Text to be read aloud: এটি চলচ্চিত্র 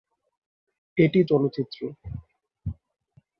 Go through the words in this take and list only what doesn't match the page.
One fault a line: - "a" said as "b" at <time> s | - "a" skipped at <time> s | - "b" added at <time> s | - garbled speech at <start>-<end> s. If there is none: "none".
none